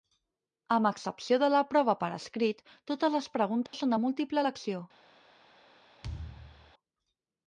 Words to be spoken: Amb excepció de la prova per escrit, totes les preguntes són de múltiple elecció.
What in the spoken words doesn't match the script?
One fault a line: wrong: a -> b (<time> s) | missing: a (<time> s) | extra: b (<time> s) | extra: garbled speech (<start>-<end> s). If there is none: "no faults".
no faults